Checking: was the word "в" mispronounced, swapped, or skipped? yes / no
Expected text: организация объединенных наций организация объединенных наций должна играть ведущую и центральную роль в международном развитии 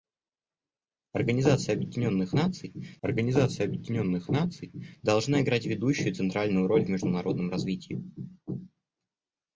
no